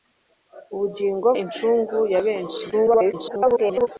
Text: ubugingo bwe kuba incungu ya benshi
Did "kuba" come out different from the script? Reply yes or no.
yes